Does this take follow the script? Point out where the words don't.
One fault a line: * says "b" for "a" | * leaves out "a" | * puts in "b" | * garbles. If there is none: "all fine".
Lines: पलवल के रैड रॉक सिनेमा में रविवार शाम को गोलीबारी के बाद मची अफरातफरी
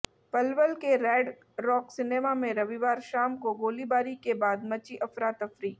all fine